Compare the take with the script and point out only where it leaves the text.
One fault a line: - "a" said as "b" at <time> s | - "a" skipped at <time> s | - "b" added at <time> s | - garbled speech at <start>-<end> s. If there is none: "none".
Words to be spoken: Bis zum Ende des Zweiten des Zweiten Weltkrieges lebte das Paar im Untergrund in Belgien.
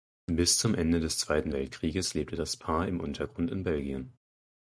- "des Zweiten" skipped at 1.5 s